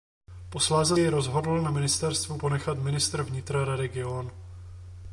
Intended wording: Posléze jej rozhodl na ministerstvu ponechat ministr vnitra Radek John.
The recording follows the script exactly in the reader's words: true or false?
true